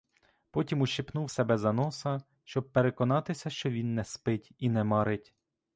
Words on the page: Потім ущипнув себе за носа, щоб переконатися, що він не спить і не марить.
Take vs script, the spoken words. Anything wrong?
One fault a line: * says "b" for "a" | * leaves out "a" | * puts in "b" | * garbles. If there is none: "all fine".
all fine